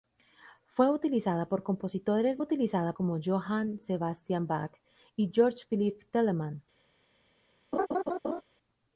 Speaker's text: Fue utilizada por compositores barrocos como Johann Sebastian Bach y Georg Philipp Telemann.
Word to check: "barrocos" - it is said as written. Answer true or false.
false